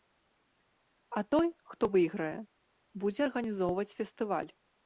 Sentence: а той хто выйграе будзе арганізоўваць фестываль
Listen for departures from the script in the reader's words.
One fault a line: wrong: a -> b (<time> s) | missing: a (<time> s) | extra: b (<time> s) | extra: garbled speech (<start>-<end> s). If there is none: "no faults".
no faults